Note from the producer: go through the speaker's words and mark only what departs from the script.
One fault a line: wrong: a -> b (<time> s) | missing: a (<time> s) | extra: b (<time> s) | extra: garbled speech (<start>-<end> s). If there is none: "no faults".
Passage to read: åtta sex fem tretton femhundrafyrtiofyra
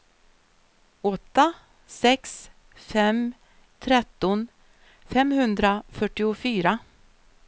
no faults